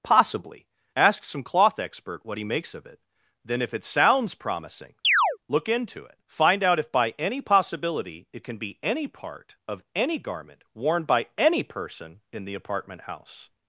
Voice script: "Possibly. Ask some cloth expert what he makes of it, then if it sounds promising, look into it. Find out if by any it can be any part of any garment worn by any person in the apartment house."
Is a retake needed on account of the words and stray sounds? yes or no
yes